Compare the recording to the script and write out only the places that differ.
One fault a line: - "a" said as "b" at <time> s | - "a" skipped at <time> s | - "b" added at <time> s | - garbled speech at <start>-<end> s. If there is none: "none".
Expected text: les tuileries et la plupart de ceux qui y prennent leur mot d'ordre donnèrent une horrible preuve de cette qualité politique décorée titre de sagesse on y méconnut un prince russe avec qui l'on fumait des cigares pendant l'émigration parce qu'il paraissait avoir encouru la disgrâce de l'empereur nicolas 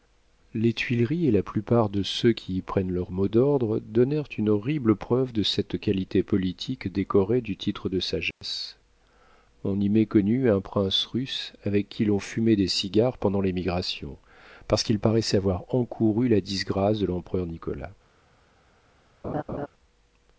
- "du" added at 7.4 s